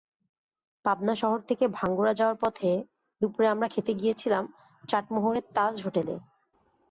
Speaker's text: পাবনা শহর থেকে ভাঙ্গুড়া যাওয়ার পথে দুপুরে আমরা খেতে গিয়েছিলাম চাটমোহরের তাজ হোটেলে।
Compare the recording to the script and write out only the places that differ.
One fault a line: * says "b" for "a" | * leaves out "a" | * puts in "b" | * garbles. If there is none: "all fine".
all fine